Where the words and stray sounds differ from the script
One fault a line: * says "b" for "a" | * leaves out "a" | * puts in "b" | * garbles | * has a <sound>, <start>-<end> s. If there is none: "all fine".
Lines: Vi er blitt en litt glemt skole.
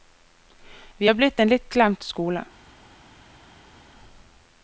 all fine